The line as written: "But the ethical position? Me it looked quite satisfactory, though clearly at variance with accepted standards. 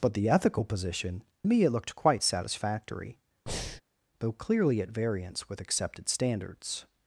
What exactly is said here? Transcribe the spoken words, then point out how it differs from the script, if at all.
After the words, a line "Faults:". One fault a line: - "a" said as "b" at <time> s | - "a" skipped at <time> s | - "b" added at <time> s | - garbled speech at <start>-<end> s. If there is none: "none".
"But the ethical position? Me it looked quite satisfactory, though clearly at variance with accepted standards.
Faults:
none